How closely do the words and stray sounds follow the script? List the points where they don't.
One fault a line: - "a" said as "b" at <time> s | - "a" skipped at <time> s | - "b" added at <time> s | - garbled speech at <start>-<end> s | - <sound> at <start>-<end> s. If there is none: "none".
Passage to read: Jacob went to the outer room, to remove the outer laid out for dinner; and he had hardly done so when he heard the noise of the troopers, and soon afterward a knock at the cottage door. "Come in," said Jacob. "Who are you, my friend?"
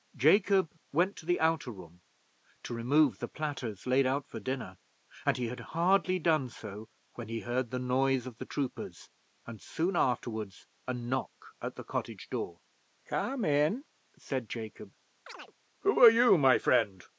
- "outer" said as "platters" at 3.3 s
- chirp at 15.3-15.5 s